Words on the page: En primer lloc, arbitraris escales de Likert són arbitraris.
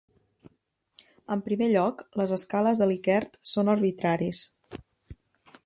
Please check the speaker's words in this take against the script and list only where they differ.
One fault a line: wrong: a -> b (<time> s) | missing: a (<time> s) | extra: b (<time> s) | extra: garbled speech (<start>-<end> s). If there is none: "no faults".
wrong: arbitraris -> les (2.2 s)